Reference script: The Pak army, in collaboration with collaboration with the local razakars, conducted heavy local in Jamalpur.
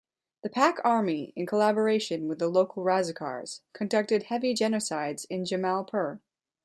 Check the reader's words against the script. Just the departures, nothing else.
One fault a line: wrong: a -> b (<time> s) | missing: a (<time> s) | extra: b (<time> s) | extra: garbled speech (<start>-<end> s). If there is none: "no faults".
missing: collaboration with (2.4 s)
wrong: local -> genocides (4.5 s)